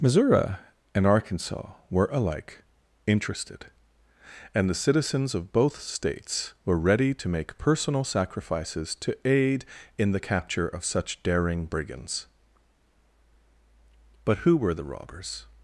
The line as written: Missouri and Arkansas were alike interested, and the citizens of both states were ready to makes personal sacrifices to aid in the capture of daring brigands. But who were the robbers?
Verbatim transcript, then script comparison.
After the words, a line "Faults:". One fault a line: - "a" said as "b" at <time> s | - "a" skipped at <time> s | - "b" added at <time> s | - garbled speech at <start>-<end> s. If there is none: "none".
Missouri and Arkansas were alike interested, and the citizens of both states were ready to make personal sacrifices to aid in the capture of such daring brigands. But who were the robbers?
Faults:
- "makes" said as "make" at 7.3 s
- "such" added at 10.9 s